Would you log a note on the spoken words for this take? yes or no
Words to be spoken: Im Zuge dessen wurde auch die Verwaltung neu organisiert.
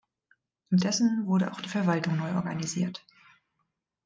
yes